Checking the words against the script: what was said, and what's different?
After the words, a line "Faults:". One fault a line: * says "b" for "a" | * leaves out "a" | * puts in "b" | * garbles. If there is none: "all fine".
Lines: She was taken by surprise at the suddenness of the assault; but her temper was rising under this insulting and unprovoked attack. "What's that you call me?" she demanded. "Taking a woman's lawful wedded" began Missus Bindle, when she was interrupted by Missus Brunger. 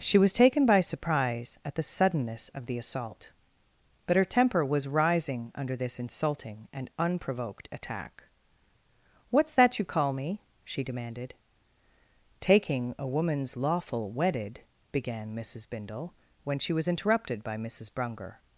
She was taken by surprise at the suddenness of the assault; but her temper was rising under this insulting and unprovoked attack. "What's that you call me?" she demanded. "Taking a woman's lawful wedded" began Missus Bindle, when she was interrupted by Missus Brunger.
Faults:
all fine